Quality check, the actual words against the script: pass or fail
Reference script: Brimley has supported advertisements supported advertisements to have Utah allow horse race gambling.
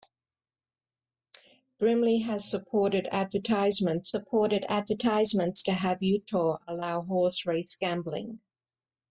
pass